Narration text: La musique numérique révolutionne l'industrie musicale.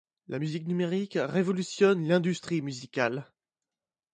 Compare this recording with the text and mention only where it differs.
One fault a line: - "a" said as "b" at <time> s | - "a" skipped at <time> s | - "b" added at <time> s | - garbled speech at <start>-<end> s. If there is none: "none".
none